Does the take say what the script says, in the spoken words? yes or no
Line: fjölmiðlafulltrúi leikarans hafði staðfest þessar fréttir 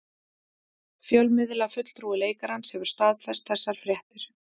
no